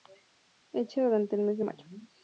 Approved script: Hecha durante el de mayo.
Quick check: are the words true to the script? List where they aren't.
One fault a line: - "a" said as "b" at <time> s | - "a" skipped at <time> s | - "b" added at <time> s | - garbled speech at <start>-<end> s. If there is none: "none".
- "mes" added at 1.4 s